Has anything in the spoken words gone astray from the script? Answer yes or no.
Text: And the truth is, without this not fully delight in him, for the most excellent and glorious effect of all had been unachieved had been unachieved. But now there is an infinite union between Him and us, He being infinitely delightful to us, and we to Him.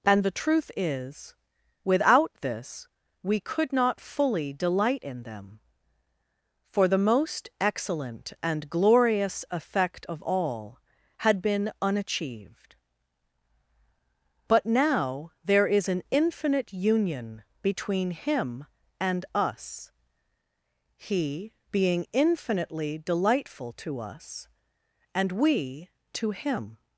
yes